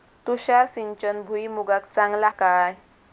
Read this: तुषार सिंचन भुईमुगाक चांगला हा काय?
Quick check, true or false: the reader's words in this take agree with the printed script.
false